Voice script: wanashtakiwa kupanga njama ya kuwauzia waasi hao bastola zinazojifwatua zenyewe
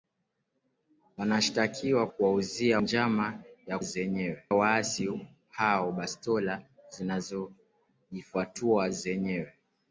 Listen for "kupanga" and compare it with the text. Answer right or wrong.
wrong